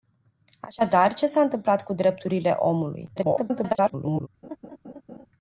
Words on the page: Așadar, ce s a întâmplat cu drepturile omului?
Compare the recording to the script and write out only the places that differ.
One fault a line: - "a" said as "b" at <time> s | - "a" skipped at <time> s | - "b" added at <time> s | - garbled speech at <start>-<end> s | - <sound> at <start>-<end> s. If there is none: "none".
- garbled speech at 3.2-4.3 s
- laugh at 4.4-5.3 s